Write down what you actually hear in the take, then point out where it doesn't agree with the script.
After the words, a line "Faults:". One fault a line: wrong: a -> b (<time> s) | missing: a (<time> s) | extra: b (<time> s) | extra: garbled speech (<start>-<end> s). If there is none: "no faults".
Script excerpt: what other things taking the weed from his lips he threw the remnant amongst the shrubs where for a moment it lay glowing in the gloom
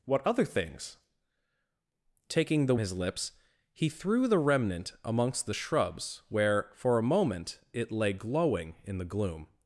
what other things taking the his lips he threw the remnant amongst the shrubs where for a moment it lay glowing in the gloom
Faults:
missing: weed from (2.8 s)